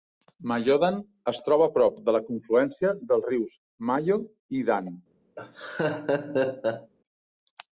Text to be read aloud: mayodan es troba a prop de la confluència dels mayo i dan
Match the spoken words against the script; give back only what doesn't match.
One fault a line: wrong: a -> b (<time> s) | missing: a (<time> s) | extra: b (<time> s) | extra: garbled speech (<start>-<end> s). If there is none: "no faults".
extra: rius (3.3 s)